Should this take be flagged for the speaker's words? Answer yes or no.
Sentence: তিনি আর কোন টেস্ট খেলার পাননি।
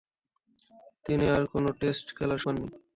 no